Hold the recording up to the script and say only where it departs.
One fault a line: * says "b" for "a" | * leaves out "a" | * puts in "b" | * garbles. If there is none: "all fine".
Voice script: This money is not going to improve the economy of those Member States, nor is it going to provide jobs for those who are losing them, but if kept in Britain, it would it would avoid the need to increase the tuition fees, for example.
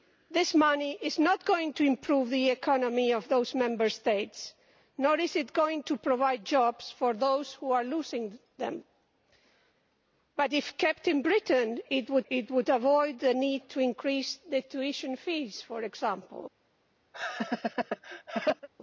all fine